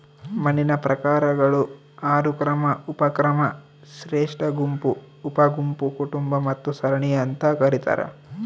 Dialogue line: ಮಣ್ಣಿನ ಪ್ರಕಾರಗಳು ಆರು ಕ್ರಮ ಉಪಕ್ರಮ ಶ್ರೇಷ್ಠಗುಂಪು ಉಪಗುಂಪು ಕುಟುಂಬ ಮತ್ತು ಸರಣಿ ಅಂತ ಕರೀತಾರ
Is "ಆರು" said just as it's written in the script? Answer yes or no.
yes